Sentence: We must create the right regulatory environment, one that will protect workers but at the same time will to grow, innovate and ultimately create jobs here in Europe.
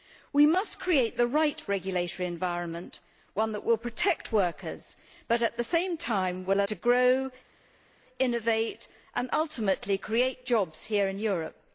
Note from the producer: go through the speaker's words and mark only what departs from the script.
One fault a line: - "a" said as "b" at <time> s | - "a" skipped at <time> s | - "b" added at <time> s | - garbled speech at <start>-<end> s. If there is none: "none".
none